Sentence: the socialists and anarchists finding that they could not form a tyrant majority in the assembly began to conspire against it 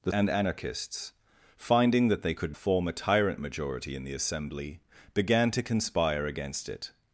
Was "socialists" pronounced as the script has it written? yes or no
no